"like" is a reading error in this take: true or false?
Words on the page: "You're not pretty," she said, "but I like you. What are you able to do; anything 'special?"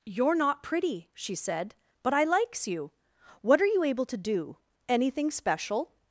true